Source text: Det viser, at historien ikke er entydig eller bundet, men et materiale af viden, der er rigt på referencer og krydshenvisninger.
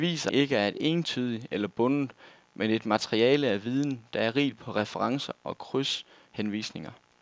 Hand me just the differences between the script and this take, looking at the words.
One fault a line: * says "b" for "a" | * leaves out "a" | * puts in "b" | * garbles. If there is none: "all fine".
* leaves out "at historien"